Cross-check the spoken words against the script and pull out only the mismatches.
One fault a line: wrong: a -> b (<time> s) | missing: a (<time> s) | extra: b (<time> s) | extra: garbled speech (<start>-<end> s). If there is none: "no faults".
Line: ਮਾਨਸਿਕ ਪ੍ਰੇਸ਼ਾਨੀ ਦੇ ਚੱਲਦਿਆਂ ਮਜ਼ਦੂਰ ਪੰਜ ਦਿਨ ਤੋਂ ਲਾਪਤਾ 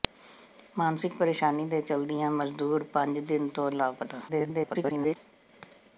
extra: garbled speech (4.3-5.2 s)